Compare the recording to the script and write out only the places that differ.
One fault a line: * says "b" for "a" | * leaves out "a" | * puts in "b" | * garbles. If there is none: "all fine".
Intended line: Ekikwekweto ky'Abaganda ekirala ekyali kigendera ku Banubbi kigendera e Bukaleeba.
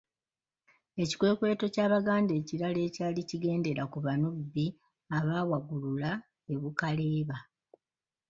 * says "abaawagulula" for "kigendera"